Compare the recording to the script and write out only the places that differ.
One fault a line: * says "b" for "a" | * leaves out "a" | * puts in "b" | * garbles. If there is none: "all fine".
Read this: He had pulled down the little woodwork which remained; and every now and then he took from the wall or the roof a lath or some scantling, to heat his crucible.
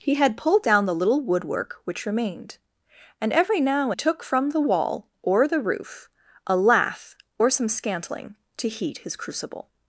* leaves out "and then he"